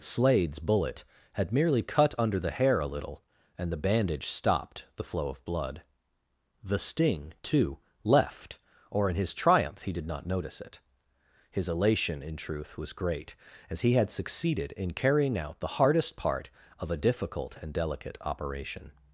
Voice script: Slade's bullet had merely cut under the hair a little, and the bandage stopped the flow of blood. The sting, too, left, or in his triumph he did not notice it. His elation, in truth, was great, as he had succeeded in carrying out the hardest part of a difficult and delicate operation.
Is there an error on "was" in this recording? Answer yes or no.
no